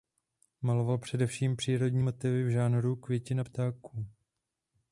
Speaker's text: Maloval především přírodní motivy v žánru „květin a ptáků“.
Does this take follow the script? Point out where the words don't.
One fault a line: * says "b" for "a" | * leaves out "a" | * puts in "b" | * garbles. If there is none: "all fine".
all fine